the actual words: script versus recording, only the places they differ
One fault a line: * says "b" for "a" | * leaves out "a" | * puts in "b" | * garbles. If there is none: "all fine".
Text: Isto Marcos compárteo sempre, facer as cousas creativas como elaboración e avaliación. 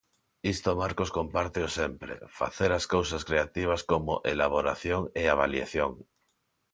all fine